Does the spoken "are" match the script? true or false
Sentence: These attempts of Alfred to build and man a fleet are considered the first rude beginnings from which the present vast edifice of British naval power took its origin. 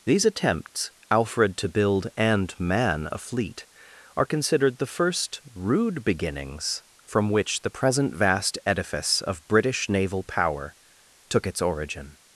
true